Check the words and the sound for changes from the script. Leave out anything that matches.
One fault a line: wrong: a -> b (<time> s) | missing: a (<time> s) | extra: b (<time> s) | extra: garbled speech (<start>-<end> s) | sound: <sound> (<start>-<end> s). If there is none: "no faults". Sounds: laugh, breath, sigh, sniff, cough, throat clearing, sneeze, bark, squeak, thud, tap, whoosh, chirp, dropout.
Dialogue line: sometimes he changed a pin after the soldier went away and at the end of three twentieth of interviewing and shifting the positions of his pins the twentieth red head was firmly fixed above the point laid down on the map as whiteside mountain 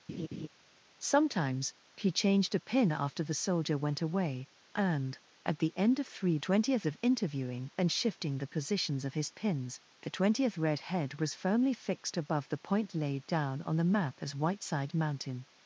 sound: laugh (0.1-0.5 s)